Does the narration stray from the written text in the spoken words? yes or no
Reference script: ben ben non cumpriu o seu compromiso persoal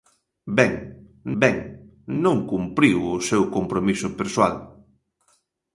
no